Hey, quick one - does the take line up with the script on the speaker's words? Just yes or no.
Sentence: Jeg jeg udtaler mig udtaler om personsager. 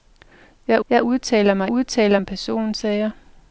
yes